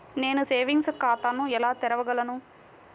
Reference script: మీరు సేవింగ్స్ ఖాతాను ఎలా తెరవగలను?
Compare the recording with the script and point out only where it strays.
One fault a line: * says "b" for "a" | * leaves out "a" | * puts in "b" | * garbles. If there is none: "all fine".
* says "నేను" for "మీరు"